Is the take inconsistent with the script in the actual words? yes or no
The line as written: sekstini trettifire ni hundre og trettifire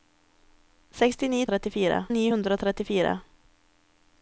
no